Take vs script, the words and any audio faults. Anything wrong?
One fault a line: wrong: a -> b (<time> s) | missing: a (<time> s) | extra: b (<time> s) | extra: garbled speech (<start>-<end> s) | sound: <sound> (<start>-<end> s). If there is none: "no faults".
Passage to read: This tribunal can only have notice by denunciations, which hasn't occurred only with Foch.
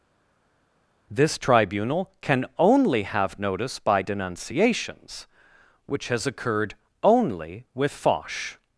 wrong: hasn't -> has (6.1 s)